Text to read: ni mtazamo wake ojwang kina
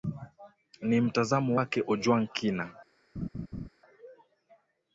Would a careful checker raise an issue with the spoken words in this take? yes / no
no